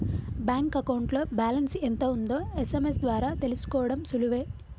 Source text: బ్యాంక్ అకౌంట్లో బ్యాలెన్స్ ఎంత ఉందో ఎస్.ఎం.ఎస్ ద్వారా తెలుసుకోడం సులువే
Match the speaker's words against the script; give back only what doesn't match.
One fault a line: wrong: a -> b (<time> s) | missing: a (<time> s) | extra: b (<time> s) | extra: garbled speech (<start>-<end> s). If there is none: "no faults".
no faults